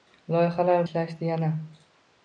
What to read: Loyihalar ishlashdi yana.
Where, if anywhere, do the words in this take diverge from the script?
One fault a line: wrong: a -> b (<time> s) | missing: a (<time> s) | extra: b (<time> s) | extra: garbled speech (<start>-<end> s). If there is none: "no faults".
no faults